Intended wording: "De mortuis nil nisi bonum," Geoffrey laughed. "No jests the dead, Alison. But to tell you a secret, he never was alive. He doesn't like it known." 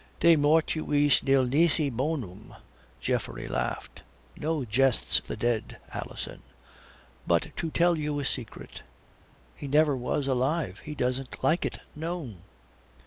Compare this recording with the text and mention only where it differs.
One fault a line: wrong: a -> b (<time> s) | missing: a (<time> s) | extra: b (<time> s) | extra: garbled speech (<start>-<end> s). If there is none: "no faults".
no faults